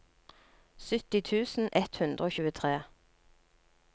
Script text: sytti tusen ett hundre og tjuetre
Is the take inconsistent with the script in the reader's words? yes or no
no